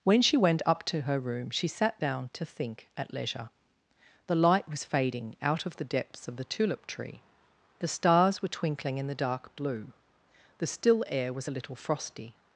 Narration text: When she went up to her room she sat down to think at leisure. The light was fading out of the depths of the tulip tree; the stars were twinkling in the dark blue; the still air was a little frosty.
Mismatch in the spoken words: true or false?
false